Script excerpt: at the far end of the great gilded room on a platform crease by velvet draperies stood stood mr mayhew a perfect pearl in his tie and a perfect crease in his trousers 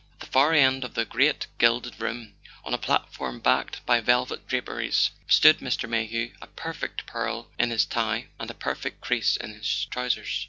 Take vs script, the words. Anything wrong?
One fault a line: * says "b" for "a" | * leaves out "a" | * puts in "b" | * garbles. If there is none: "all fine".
* says "backed" for "crease"
* leaves out "stood"